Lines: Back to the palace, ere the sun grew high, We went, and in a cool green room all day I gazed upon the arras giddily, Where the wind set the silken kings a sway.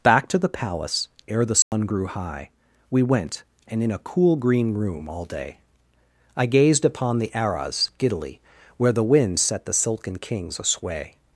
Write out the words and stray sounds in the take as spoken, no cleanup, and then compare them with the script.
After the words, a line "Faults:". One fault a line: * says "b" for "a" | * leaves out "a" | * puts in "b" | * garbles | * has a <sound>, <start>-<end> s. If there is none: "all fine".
Back to the palace, ere the sun grew high, We went, and in a cool green room all day I gazed upon the arras giddily, Where the wind set the silken kings a sway.
Faults:
* has a dropout, 1.6-1.7 s